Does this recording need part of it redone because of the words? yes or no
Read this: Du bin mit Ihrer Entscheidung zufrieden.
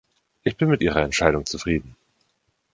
yes